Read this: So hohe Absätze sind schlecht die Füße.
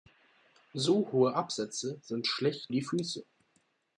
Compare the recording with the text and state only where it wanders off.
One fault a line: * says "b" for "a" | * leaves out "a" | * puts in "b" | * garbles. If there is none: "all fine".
all fine